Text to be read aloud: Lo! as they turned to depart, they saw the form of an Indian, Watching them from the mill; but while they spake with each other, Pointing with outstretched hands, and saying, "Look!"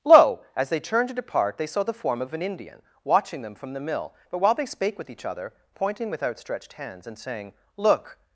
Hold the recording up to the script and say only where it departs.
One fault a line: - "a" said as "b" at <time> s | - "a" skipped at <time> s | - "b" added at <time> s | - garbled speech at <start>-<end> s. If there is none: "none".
none